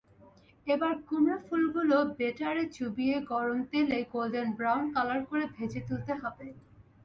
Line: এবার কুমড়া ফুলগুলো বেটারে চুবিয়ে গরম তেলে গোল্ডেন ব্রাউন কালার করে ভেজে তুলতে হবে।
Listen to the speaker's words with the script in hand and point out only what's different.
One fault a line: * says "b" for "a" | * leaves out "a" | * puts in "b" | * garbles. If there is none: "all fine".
all fine